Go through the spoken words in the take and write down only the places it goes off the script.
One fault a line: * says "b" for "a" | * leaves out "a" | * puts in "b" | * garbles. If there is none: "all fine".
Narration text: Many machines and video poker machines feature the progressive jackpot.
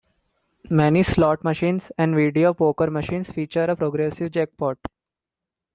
* puts in "slot"
* says "a" for "the"